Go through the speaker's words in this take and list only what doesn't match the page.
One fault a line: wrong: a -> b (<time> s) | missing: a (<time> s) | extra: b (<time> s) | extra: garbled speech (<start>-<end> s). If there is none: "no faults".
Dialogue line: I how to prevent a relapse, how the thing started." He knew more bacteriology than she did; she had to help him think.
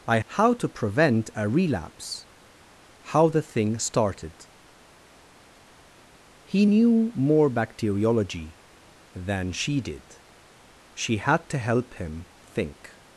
no faults